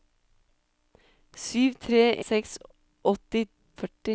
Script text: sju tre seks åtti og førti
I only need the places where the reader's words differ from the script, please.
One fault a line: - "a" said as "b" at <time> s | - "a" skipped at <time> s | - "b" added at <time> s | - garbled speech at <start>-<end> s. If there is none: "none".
none